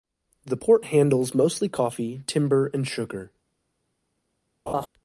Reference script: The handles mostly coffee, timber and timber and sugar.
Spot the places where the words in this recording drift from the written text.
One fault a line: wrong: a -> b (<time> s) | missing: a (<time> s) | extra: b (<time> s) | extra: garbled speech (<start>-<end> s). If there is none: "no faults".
extra: port (0.6 s)
missing: timber and (2.9 s)